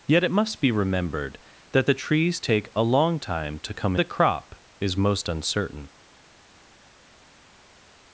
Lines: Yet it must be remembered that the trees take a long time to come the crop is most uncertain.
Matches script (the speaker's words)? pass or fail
pass